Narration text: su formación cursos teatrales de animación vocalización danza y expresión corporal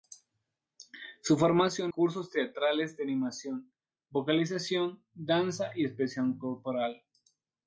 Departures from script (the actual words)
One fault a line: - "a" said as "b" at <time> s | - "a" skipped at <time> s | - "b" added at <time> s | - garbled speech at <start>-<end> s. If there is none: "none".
none